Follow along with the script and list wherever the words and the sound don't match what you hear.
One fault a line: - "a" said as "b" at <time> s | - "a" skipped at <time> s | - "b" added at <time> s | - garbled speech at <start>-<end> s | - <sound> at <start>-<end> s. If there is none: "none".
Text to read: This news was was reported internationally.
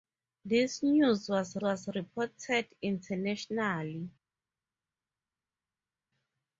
none